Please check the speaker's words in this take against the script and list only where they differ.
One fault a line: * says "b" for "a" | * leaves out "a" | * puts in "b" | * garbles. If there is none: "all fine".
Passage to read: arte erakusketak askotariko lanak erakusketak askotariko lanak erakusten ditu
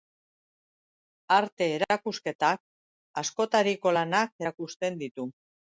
* leaves out "erakusketak askotariko lanak"